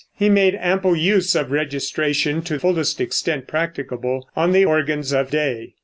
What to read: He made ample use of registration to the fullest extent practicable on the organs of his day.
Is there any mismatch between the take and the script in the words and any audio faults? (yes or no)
yes